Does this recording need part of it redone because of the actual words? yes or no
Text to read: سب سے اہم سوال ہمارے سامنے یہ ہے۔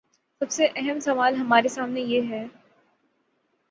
no